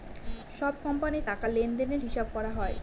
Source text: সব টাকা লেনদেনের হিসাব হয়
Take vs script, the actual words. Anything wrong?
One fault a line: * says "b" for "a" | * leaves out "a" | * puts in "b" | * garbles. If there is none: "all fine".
* puts in "কোম্পানির"
* puts in "করা"